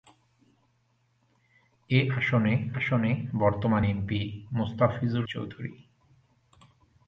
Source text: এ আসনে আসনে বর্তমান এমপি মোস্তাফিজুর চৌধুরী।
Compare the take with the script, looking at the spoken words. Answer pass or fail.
pass